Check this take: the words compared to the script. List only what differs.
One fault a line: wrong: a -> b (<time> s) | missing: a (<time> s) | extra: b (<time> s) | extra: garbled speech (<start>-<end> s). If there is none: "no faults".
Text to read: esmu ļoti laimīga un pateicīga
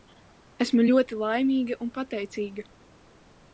no faults